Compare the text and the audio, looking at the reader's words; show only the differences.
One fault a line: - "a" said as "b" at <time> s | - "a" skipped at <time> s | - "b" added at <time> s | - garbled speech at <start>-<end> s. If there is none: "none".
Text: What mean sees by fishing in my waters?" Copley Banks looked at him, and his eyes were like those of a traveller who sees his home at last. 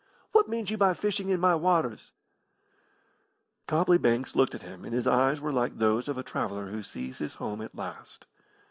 - "sees" said as "you" at 0.7 s